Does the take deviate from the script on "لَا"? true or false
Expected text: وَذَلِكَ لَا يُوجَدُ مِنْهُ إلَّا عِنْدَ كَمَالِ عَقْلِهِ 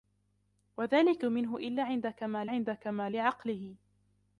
true